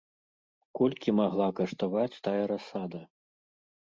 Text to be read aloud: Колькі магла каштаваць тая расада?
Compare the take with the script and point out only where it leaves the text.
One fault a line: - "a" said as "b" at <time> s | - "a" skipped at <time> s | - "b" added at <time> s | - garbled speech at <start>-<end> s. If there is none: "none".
none